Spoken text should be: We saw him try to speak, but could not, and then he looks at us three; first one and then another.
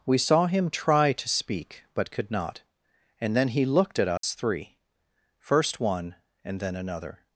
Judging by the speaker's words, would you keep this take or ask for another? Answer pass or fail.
fail